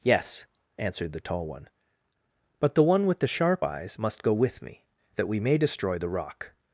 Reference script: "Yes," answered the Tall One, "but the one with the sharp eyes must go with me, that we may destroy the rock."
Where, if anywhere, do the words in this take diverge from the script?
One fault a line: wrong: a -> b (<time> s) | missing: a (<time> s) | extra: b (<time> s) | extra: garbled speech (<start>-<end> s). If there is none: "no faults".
no faults